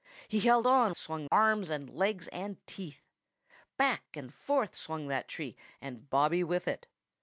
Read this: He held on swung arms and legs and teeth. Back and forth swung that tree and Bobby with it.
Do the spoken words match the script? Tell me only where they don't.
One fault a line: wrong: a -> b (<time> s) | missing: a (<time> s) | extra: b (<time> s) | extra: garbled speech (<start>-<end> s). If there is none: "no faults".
no faults